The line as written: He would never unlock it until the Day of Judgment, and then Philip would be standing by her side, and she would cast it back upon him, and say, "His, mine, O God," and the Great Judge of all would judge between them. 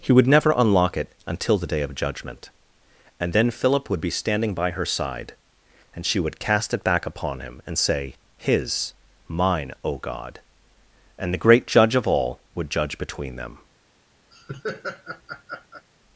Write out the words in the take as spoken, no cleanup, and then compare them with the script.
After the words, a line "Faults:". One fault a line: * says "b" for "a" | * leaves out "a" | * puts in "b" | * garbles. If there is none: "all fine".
He would never unlock it until the Day of Judgment, and then Philip would be standing by her side, and she would cast it back upon him, and say, "His, mine, O God," and the Great Judge of all would judge between them.
Faults:
all fine